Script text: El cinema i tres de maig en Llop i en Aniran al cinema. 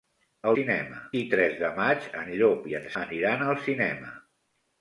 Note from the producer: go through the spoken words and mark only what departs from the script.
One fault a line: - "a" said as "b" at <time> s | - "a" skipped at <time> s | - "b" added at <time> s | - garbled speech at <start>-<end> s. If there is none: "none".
none